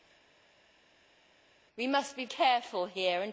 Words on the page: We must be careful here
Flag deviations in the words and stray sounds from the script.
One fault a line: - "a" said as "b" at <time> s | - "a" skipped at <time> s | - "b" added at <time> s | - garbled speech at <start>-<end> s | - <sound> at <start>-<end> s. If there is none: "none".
none